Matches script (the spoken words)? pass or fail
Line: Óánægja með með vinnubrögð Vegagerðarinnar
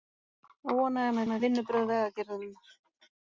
pass